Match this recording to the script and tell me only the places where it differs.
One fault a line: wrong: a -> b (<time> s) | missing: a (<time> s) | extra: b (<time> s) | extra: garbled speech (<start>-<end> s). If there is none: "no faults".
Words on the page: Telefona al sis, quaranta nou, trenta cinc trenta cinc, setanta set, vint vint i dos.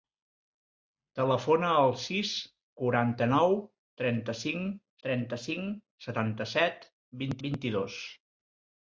no faults